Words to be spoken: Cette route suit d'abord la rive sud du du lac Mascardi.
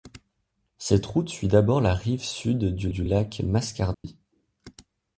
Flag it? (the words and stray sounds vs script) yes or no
yes